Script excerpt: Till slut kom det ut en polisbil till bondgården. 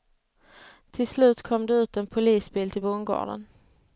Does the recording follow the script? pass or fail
pass